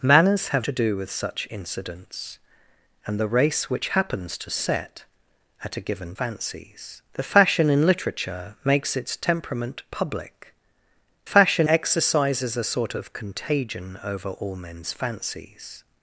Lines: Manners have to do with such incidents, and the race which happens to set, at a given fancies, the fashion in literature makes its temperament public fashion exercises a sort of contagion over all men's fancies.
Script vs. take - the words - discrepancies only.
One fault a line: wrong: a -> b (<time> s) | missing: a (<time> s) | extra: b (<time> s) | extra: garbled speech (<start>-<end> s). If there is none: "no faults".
no faults